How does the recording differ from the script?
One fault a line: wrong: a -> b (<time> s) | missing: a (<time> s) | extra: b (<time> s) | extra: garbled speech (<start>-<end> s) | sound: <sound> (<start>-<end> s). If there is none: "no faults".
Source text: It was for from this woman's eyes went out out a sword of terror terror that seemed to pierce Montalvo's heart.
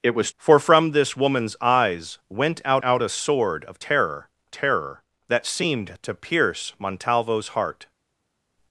no faults